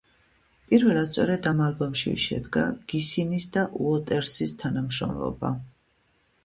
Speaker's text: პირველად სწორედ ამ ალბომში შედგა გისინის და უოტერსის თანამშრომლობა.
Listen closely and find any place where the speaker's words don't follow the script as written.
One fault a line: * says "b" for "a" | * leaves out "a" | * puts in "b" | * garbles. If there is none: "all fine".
all fine